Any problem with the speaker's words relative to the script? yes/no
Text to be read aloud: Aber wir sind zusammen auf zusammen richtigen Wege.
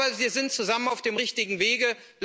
yes